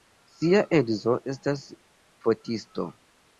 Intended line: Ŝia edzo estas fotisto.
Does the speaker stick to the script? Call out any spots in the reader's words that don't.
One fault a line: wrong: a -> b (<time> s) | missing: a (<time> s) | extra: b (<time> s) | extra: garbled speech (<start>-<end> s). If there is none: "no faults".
no faults